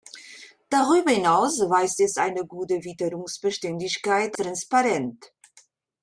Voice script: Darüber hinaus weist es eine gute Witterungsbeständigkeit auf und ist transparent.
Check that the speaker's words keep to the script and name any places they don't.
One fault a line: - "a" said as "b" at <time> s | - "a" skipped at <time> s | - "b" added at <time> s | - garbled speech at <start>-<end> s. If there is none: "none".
- "auf und ist" skipped at 4.4 s